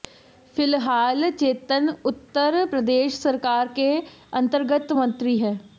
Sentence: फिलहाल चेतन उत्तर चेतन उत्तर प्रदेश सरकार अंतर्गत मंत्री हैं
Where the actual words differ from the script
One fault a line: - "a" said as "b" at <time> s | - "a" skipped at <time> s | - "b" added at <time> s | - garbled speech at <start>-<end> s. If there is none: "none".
- "चेतन उत्तर" skipped at 2.6 s
- "के" added at 3.7 s